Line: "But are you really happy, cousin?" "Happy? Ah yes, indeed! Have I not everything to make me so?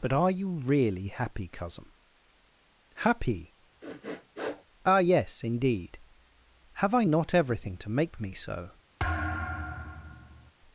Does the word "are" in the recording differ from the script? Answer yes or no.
no